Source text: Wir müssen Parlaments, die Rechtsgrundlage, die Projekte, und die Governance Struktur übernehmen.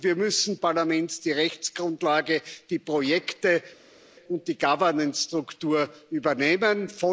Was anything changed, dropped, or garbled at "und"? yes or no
no